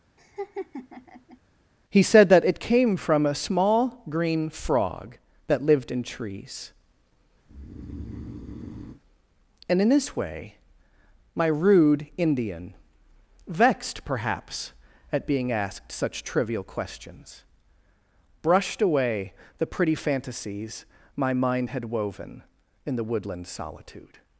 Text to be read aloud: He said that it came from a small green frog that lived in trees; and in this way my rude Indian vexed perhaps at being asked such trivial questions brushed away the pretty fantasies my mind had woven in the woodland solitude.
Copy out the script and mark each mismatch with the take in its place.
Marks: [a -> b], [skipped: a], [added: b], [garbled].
He said that it came from a small green frog that lived in trees; and in this way my rude Indian vexed perhaps at being asked such trivial questions brushed away the pretty fantasies my mind had woven in the woodland solitude.